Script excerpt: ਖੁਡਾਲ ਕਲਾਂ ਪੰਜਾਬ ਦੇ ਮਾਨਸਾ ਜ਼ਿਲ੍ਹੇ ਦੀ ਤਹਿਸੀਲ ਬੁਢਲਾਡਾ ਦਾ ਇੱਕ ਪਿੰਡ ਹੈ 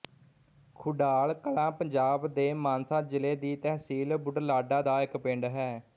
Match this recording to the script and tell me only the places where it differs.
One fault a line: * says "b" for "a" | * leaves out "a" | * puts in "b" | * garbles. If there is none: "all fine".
all fine